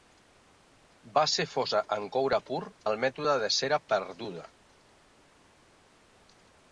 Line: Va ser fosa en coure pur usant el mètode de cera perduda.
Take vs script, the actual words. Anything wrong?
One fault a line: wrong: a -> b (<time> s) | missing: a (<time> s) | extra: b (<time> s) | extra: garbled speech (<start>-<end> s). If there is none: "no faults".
missing: usant (2.6 s)